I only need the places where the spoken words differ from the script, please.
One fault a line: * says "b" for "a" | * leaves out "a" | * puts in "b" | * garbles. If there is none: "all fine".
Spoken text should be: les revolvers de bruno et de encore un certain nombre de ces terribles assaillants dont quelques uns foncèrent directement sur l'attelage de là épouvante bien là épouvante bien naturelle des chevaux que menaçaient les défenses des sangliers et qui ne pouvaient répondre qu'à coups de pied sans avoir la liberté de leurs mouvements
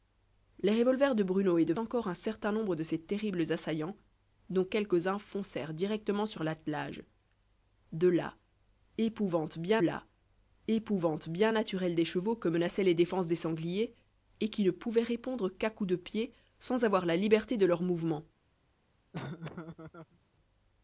all fine